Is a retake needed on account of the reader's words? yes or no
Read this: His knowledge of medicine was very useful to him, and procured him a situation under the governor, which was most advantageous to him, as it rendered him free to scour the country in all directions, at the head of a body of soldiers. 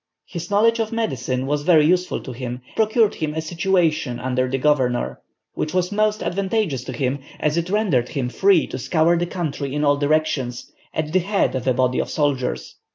yes